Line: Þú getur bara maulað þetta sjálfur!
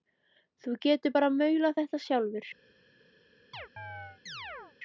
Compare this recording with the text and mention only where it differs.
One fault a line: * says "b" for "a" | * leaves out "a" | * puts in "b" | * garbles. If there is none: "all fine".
all fine